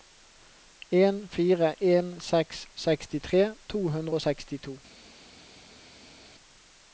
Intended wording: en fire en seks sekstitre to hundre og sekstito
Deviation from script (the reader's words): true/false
false